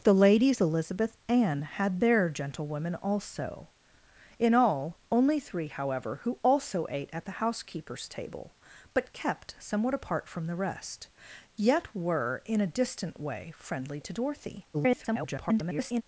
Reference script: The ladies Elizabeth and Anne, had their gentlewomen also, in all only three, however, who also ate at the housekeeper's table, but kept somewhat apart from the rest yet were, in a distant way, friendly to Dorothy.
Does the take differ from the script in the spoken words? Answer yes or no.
yes